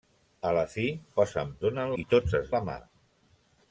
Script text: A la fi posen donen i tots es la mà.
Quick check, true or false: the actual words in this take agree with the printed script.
true